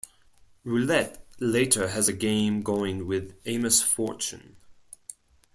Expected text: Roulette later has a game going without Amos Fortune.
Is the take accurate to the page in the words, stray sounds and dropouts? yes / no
no